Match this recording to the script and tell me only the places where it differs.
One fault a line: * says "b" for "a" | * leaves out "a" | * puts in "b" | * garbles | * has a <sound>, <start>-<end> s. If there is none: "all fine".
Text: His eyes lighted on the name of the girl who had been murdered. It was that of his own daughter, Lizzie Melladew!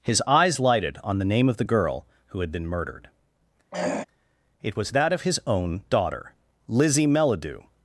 * has a throat clearing, 3.7-4.0 s